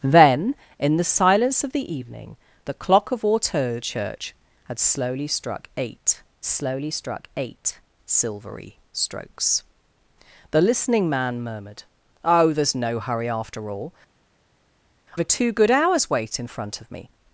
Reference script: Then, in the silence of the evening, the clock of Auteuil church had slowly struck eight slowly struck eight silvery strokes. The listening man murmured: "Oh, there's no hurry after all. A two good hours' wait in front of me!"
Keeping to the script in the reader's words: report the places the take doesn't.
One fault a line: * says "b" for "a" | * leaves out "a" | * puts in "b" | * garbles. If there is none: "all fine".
all fine